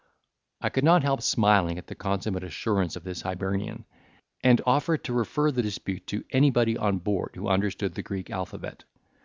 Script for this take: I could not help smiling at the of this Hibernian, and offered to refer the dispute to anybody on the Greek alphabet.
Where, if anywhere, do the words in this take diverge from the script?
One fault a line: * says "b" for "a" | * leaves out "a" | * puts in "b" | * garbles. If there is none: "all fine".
* puts in "consummate assurance"
* puts in "board who understood"